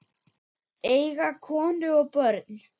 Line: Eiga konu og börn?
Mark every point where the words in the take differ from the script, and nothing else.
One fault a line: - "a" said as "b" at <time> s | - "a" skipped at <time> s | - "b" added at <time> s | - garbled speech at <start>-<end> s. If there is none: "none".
none